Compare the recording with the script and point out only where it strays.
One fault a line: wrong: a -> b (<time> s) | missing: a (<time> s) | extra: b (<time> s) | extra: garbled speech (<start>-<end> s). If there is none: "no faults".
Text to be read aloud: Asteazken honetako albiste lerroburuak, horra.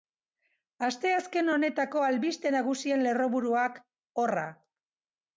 extra: nagusien (2.6 s)